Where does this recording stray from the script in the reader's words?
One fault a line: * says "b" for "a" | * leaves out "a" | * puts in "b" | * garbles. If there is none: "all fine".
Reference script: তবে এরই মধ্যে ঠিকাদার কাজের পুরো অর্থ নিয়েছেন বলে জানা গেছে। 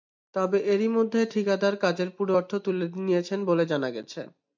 * puts in "তুলে"